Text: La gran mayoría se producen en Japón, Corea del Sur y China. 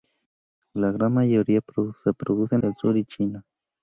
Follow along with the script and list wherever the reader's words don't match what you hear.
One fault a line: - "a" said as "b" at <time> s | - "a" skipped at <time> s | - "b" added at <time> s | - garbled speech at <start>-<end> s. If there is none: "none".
- "en Japón Corea" skipped at 2.6 s